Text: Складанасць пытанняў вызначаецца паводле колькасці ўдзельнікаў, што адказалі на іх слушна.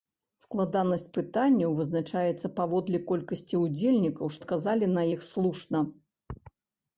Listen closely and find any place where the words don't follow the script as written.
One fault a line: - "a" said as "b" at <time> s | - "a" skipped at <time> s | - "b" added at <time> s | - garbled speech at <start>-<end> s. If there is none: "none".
- "што" skipped at 4.3 s